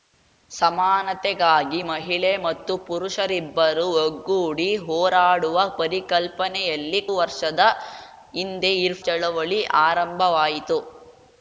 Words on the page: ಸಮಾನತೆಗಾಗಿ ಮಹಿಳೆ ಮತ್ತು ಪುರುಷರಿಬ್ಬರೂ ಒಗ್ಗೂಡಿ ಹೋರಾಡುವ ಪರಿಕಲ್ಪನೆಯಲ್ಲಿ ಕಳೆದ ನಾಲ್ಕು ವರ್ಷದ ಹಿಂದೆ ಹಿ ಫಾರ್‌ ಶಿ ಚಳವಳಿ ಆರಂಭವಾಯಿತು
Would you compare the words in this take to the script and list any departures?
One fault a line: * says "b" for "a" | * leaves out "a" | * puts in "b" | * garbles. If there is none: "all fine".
* leaves out "ಕಳೆದ ನಾಲ್ಕು"
* leaves out "ಫಾರ್ ಶಿ"